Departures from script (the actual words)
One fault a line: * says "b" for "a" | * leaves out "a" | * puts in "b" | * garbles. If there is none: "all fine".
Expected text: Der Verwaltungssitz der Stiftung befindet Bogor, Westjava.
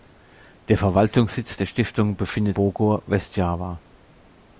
all fine